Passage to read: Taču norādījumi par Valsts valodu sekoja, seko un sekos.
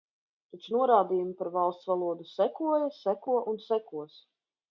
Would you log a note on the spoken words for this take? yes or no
no